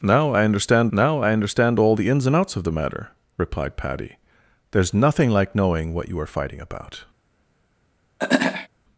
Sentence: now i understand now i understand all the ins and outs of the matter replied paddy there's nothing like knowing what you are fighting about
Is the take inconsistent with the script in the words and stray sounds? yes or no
yes